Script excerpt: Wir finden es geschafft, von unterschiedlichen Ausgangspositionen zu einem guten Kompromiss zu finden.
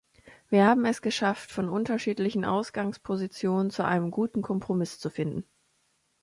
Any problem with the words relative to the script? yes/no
yes